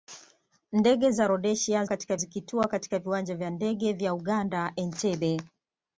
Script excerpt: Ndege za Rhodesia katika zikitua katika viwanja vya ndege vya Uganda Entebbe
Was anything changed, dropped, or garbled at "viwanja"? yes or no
no